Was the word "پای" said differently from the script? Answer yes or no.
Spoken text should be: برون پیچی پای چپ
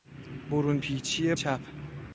yes